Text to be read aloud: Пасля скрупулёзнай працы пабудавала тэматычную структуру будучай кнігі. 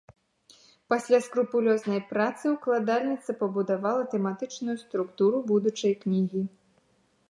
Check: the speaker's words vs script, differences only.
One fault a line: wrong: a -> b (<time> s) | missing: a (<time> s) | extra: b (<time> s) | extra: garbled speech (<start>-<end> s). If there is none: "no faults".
extra: ўкладальніца (2.5 s)